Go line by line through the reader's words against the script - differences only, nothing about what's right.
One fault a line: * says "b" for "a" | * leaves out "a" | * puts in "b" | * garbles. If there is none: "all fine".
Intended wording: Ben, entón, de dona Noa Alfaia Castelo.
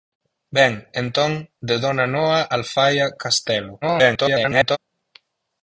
* garbles